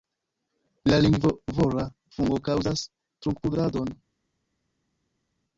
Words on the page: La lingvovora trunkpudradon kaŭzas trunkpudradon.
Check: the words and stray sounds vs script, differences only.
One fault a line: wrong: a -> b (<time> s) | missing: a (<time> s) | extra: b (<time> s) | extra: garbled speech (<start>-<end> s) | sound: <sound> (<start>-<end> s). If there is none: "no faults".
wrong: trunkpudradon -> fungo (2.2 s)